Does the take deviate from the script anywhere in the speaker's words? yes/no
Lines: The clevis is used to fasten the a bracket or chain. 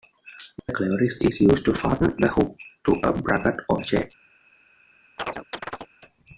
yes